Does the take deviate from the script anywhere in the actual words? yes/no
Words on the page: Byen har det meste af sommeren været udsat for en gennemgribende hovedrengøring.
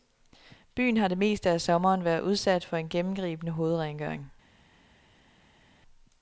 no